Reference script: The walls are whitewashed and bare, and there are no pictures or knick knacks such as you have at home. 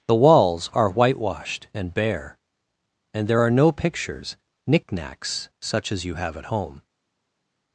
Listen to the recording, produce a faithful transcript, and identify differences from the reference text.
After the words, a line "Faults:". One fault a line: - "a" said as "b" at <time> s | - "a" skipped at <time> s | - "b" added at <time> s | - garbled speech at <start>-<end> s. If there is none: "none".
The walls are whitewashed and bare, and there are no pictures knick knacks such as you have at home.
Faults:
- "or" skipped at 4.4 s